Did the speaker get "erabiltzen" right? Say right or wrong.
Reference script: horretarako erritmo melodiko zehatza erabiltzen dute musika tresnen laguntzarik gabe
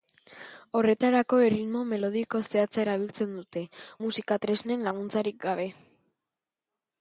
right